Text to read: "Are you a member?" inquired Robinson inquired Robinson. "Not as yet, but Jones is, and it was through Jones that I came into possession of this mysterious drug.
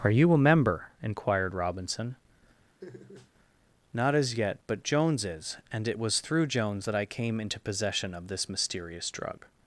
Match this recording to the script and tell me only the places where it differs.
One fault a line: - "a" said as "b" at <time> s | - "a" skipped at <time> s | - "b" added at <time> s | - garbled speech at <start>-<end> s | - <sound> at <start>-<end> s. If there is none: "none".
- "inquired Robinson" skipped at 2.1 s
- laugh at 2.8-3.3 s